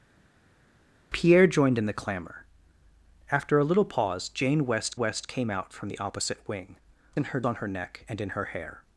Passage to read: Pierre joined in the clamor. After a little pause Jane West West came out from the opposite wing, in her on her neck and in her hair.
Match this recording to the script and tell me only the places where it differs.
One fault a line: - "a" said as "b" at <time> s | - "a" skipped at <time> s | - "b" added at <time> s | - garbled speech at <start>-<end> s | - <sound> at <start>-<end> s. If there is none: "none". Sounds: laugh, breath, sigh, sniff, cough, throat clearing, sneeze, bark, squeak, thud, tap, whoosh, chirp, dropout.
none